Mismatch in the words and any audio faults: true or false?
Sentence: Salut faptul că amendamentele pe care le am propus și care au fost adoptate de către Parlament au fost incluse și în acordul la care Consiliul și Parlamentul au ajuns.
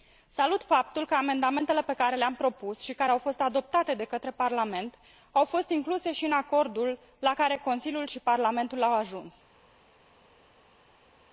false